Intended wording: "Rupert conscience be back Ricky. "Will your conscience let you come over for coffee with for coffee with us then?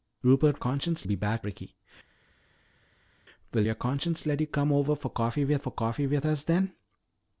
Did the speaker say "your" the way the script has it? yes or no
yes